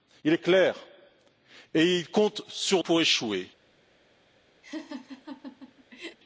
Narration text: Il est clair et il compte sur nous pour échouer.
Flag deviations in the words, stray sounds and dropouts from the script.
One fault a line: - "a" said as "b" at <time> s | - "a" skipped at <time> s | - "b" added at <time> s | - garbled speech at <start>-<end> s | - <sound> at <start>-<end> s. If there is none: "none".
- "nous" skipped at 2.8 s
- laugh at 4.6-6.2 s